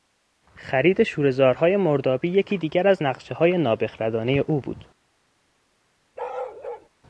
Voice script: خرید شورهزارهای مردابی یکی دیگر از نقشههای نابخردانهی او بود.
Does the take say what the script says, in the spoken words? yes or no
yes